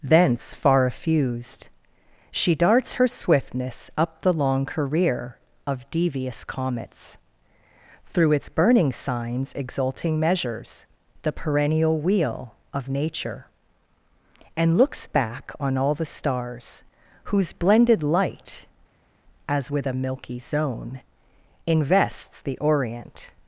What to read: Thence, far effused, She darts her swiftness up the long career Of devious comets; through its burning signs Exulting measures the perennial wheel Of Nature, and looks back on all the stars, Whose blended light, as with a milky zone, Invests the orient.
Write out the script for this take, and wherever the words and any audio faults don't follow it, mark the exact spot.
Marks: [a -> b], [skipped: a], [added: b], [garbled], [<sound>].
Thence, far effused, She darts her swiftness up the long career Of devious comets; through its burning signs Exulting measures the perennial wheel Of Nature, and looks back on all the stars, Whose blended light, as with a milky zone, Invests the orient.